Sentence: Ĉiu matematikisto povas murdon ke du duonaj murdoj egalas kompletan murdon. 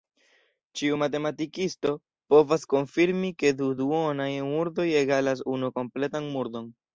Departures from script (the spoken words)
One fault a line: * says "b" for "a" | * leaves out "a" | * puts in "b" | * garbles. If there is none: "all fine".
* says "konfirmi" for "murdon"
* puts in "unu"